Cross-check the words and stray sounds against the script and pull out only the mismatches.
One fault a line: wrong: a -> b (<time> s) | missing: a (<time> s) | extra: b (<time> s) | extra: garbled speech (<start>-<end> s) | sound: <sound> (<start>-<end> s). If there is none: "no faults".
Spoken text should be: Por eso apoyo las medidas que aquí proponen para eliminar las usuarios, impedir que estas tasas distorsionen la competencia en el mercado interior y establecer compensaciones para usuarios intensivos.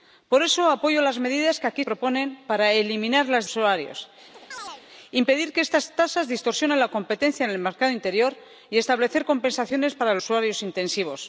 sound: chirp (4.3-4.8 s)